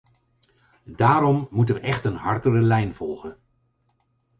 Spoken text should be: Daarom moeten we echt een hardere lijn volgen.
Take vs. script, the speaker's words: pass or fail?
pass